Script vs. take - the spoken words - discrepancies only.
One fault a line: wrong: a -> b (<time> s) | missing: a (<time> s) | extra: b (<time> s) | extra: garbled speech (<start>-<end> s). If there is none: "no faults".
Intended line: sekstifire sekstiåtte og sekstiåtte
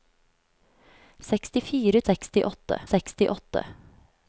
no faults